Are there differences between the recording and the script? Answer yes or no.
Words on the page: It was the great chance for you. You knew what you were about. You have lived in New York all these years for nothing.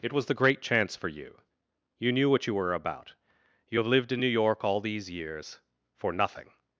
no